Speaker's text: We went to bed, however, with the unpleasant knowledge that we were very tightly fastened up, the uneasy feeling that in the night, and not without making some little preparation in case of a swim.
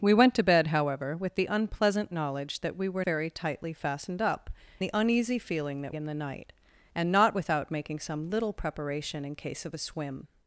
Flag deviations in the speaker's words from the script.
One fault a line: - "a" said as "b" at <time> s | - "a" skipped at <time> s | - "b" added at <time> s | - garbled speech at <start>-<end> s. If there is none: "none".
none